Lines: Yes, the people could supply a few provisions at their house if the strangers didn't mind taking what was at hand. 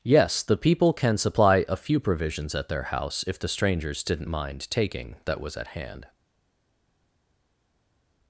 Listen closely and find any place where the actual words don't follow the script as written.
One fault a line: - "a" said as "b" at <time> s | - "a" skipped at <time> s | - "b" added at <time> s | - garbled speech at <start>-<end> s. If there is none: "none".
- "could" said as "can" at 0.9 s
- "what" said as "that" at 5.2 s